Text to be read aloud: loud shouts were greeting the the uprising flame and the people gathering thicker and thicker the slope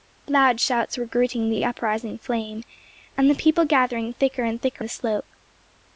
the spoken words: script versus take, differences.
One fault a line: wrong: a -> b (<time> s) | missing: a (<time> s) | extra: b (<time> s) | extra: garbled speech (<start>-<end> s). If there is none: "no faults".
no faults